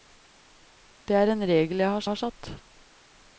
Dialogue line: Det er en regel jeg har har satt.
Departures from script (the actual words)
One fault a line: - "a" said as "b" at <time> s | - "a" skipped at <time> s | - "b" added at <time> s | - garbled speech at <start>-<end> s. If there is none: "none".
none